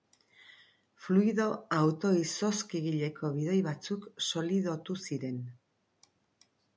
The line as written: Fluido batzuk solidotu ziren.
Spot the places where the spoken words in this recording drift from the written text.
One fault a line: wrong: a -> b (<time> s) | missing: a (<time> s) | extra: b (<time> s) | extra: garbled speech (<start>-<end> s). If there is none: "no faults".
extra: auto izozkigileko bidoi (1.8 s)